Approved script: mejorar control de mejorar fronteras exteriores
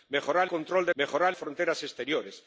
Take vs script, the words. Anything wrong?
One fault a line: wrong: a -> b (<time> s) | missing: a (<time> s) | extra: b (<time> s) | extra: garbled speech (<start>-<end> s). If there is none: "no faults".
no faults